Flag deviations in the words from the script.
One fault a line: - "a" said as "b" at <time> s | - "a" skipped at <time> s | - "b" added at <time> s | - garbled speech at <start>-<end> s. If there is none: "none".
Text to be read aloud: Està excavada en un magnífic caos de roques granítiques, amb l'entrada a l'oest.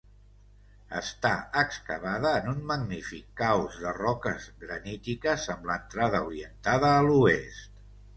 - "orientada" added at 6.3 s